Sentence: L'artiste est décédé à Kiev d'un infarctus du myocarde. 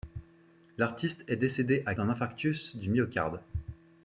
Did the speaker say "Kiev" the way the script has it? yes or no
no